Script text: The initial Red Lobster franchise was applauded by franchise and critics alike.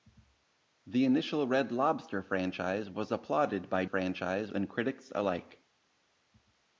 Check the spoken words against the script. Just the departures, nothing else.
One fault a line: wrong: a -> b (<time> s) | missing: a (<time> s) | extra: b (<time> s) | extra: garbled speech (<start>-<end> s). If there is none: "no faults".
no faults